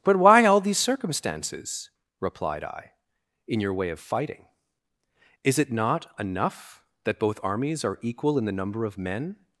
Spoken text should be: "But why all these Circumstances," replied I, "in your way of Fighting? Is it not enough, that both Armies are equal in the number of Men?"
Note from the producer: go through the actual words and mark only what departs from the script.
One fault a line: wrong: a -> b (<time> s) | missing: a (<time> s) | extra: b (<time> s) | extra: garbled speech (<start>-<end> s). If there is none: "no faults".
no faults